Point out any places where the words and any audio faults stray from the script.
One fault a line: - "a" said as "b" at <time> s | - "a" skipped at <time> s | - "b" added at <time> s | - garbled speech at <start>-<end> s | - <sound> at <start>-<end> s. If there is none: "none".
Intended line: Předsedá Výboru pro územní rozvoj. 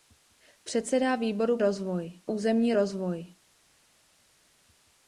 - "pro" said as "rozvoj" at 1.6 s